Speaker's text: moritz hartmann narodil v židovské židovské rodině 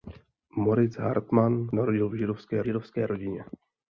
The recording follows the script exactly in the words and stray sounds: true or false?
true